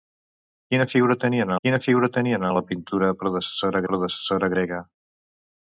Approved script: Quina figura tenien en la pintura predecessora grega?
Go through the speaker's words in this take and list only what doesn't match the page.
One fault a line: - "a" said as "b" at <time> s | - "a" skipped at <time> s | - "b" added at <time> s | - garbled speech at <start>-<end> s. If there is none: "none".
- "quina figura tenien" added at 1.7 s
- "predecessora" added at 3.9 s